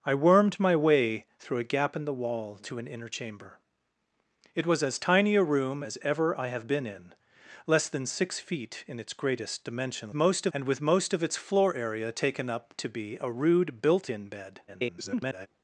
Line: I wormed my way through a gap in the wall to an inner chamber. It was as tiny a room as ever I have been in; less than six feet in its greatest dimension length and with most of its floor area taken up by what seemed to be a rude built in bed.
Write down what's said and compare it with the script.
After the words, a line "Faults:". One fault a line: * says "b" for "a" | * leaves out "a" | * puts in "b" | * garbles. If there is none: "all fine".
I wormed my way through a gap in the wall to an inner chamber. It was as tiny a room as ever I have been in; less than six feet in its greatest dimension most and with most of its floor area taken up to be a rude built in bed. [garbled]
Faults:
* says "most" for "length"
* leaves out "by what seemed"
* garbles